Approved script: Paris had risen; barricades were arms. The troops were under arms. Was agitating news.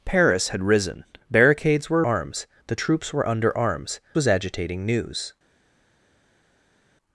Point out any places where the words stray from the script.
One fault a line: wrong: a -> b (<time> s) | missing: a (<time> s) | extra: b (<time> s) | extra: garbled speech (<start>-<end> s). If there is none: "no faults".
no faults